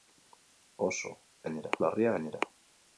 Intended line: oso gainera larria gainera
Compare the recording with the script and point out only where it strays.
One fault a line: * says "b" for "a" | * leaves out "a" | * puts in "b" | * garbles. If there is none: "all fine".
all fine